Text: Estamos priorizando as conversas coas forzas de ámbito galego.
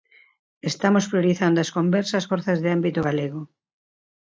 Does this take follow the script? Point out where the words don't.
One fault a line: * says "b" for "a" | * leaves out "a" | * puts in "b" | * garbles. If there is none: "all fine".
* leaves out "coas"